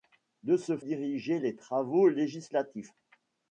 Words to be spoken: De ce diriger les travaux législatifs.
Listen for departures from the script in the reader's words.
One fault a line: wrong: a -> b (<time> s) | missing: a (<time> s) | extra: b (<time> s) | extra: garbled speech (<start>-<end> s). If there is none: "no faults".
no faults